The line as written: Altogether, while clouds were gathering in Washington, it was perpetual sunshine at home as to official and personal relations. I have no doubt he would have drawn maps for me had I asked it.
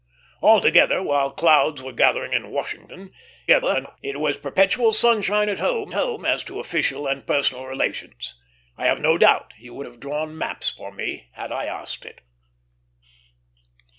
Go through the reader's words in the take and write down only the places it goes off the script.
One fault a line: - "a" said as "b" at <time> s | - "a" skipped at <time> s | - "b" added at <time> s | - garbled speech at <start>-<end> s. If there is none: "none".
- garbled speech at 3.5-4.0 s
- "home" added at 5.9 s